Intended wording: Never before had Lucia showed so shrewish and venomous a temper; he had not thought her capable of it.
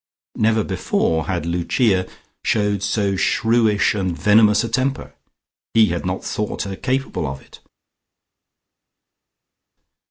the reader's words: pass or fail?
pass